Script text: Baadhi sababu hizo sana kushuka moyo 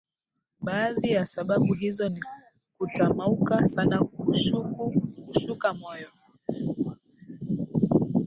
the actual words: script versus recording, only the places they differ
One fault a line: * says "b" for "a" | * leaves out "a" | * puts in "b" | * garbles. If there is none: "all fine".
* puts in "ya"
* puts in "ni kutamauka"